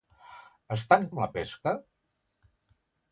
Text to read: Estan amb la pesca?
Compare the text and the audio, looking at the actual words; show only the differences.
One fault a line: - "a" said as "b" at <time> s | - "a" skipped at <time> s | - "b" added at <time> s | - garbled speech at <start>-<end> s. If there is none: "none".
none